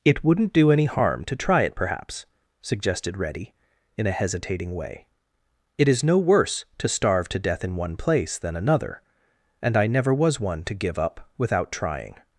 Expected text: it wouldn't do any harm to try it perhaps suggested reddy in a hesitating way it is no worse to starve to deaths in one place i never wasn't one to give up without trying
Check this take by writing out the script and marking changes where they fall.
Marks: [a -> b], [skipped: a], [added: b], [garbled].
it wouldn't do any harm to try it perhaps suggested reddy in a hesitating way it is no worse to starve to [deaths -> death] in one place [added: than another and] i never [wasn't -> was] one to give up without trying